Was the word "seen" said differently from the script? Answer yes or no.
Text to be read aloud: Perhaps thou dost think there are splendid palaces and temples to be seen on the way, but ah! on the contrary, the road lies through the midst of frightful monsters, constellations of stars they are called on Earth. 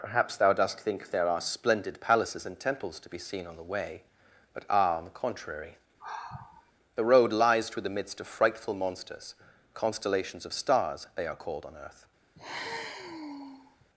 no